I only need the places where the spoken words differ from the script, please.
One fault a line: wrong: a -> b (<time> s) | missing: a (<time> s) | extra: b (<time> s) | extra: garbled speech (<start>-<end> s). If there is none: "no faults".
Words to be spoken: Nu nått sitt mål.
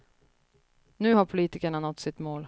extra: har politikerna (1.1 s)